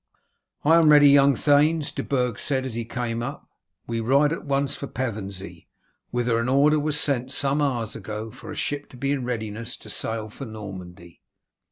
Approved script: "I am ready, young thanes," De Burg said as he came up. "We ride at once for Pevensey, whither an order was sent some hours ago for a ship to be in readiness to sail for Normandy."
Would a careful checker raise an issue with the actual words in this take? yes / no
no